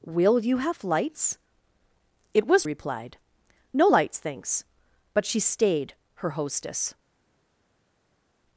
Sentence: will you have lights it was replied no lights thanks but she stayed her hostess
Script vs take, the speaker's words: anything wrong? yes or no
no